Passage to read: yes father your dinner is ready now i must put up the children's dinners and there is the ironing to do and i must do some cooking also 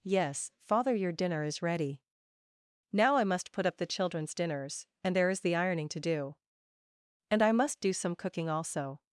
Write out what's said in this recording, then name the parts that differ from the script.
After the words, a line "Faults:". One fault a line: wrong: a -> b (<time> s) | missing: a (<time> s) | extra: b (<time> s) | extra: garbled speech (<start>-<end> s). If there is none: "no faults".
yes father your dinner is ready now i must put up the children's dinners and there is the ironing to do and i must do some cooking also
Faults:
no faults